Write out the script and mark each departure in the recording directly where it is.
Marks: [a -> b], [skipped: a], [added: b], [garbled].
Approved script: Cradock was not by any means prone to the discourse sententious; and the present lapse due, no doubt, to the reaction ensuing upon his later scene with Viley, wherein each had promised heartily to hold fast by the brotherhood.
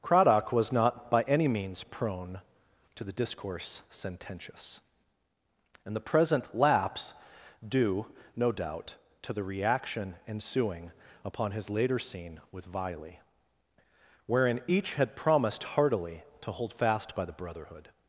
Cradock was not by any means prone to the discourse sententious; and the present lapse due, no doubt, to the reaction ensuing upon his later scene with Viley, wherein each had promised heartily to hold fast by the brotherhood.